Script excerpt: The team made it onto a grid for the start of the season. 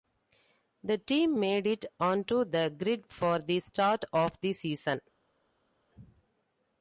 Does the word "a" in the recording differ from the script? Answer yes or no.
yes